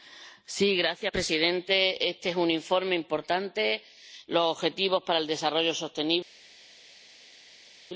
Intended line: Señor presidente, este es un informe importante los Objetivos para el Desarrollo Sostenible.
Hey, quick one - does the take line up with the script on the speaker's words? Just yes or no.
yes